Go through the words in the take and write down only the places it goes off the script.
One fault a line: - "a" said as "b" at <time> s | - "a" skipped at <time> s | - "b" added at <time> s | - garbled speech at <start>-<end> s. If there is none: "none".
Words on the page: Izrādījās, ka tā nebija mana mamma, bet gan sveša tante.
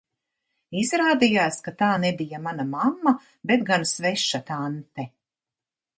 none